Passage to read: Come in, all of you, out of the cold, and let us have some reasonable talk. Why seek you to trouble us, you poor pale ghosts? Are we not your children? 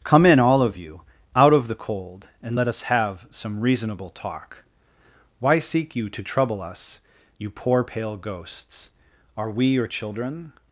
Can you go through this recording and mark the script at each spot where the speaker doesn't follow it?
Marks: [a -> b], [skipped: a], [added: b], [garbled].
Come in, all of you, out of the cold, and let us have some reasonable talk. Why seek you to trouble us, you poor pale ghosts? Are we [skipped: not] your children?